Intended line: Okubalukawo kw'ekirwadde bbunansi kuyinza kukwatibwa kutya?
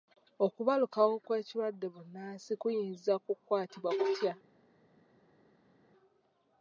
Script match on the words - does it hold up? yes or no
yes